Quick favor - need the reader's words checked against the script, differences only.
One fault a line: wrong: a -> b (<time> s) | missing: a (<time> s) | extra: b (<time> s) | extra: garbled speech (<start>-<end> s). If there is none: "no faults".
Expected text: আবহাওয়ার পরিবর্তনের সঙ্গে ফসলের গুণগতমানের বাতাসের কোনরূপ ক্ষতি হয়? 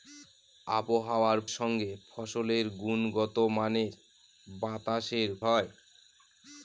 missing: পরিবর্তনের (1.4 s)
missing: কোনরূপ ক্ষতি (5.3 s)